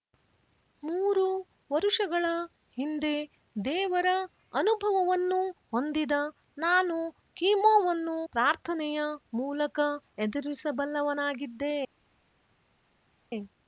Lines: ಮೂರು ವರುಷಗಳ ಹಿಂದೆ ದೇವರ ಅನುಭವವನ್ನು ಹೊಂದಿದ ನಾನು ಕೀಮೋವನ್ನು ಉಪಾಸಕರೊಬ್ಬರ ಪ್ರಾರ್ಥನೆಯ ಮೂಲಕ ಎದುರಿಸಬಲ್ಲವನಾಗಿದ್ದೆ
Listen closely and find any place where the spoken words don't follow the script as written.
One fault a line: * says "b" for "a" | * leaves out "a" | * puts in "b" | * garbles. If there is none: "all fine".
* leaves out "ಉಪಾಸಕರೊಬ್ಬರ"